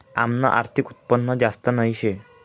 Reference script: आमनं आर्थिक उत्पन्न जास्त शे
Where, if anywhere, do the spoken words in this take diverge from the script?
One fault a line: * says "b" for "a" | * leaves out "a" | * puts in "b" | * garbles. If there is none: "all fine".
* puts in "नही"